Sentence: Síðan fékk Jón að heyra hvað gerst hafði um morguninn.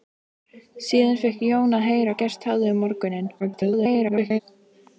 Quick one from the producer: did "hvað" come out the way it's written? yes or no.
no